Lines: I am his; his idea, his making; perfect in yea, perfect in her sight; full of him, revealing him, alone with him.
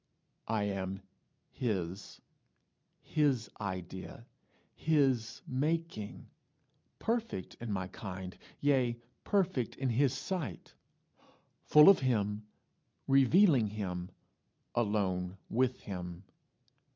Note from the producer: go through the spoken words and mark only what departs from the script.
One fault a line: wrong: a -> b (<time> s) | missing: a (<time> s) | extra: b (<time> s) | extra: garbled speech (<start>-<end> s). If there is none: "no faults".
extra: my kind (7.7 s)
wrong: her -> his (9.9 s)